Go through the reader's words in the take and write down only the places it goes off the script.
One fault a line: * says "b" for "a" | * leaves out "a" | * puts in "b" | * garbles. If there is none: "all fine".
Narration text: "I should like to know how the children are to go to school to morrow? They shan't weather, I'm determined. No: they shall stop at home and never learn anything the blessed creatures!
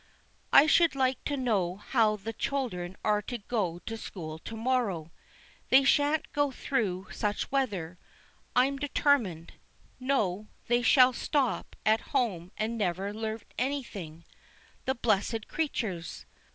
* puts in "go through such"